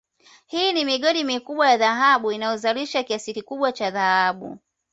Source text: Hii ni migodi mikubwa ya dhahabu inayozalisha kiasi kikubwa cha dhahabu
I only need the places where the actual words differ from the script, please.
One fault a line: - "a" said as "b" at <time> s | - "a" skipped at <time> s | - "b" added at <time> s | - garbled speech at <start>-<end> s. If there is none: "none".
none